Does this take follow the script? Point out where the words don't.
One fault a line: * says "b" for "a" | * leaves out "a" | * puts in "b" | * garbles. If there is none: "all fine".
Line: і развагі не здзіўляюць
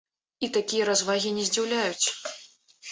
* puts in "такія"